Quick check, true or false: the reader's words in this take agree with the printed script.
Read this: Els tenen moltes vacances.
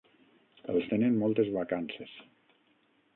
true